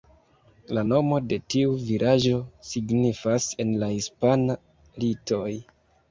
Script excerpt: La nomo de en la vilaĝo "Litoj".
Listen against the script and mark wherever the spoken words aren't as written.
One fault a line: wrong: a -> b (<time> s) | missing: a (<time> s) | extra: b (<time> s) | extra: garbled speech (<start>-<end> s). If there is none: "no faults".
extra: tiu vilaĝo signifas (1.5 s)
wrong: vilaĝo -> hispana (4.0 s)